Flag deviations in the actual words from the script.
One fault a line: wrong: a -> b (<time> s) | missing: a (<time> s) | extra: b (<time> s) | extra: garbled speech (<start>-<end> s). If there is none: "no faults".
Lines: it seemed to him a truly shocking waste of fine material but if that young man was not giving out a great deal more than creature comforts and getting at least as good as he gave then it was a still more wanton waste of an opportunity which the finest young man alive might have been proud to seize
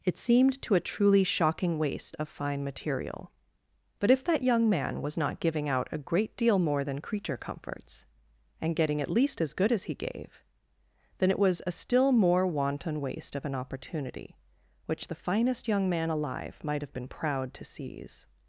missing: him (0.7 s)